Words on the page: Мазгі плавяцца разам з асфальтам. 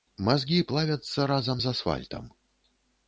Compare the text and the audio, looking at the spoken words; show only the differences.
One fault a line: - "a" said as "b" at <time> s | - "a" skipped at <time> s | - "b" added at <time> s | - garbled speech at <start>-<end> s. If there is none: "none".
none